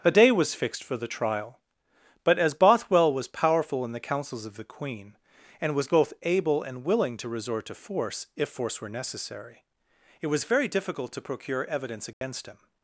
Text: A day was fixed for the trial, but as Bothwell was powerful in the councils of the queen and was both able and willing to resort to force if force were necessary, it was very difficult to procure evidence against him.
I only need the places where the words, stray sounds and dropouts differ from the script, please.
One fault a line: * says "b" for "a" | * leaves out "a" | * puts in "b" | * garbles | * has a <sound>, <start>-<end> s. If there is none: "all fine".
* has a dropout, 12.1-12.2 s